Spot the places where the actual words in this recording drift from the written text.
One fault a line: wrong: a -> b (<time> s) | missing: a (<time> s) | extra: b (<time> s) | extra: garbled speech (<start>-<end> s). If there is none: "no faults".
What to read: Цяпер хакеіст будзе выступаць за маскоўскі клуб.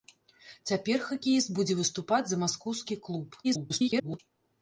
extra: garbled speech (3.4-4.2 s)